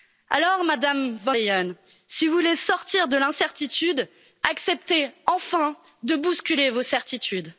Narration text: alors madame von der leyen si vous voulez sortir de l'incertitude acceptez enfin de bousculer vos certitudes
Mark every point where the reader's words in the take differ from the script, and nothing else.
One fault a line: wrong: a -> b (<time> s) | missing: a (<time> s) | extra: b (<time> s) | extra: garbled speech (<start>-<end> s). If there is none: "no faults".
missing: der (1.4 s)